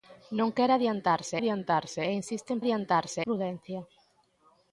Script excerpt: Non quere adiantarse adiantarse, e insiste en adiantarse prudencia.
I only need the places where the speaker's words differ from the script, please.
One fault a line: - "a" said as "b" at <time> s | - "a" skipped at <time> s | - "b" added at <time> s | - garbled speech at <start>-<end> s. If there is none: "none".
none